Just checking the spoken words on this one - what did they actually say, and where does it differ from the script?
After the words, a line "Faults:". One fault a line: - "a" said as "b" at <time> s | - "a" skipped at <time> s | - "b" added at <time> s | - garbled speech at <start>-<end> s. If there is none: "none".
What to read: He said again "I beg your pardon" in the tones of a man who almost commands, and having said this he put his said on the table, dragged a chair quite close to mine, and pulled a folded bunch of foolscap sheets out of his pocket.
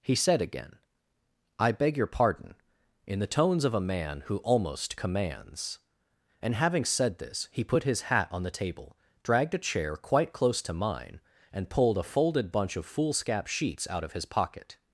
He said again "I beg your pardon" in the tones of a man who almost commands, and having said this he put his hat on the table, dragged a chair quite close to mine, and pulled a folded bunch of foolscap sheets out of his pocket.
Faults:
- "said" said as "hat" at 8.0 s